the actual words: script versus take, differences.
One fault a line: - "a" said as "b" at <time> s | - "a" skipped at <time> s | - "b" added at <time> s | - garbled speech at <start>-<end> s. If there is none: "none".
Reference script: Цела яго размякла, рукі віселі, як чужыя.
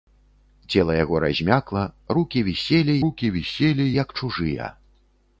- "рукі віселі" added at 3.1 s